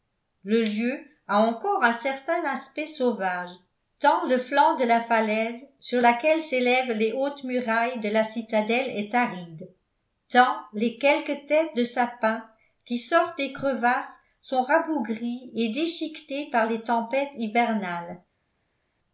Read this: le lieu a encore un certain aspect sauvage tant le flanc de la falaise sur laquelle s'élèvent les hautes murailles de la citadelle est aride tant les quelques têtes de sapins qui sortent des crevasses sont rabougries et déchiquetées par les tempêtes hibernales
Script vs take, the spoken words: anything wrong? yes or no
no